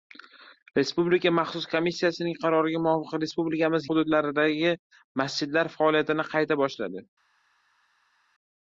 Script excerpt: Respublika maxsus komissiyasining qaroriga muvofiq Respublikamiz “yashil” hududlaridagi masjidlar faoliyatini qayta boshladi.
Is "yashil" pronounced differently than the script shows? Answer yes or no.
yes